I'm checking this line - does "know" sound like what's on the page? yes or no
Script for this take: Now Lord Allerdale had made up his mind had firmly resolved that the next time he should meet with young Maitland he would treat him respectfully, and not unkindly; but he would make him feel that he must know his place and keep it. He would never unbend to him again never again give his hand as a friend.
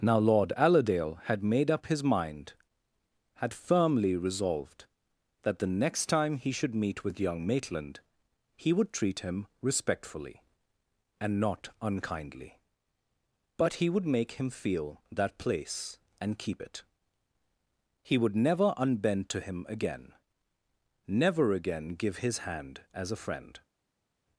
no